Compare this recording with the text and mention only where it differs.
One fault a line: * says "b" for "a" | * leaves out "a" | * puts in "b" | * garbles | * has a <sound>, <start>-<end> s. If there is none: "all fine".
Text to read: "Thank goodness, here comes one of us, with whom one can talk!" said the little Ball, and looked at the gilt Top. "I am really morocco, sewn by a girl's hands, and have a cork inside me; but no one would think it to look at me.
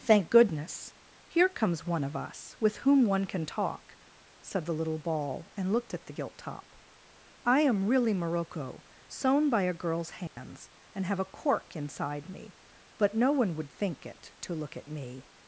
* has a dropout, 10.3-10.4 s